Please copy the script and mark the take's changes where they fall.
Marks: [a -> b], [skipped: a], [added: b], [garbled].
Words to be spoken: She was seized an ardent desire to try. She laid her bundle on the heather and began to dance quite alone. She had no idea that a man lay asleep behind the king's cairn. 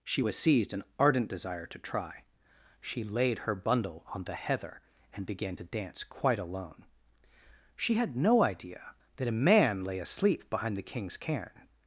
She was seized an ardent desire to try. She laid her bundle on the heather and began to dance quite alone. She had no idea that a man lay asleep behind the king's cairn.